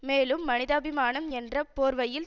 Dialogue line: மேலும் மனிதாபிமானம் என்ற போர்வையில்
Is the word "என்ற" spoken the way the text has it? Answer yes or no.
yes